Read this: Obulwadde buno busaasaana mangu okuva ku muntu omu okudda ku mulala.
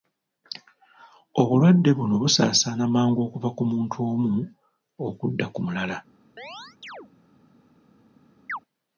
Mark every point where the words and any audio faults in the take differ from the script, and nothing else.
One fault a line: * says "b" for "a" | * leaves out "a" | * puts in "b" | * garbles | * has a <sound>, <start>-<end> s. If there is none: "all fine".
* has a chirp, 6.4-7.1 s
* has a chirp, 8.5-8.6 s